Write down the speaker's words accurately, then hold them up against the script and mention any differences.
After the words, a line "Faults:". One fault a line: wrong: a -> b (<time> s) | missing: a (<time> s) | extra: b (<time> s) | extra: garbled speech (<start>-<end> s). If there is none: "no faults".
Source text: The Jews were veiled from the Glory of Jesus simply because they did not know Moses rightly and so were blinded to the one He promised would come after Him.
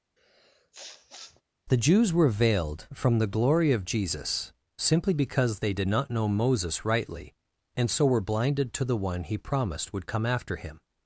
The Jews were veiled from the Glory of Jesus simply because they did not know Moses rightly and so were blinded to the one He promised would come after Him.
Faults:
no faults